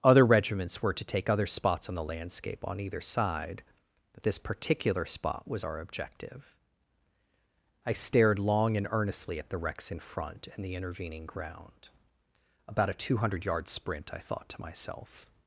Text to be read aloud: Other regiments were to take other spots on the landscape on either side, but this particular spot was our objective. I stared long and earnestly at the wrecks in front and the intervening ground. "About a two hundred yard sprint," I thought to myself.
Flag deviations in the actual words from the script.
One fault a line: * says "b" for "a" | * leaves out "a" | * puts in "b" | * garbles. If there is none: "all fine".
all fine